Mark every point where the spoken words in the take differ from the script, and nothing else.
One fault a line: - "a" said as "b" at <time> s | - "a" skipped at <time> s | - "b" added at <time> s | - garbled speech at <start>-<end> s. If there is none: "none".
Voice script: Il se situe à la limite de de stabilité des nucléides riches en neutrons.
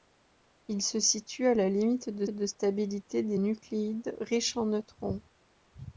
none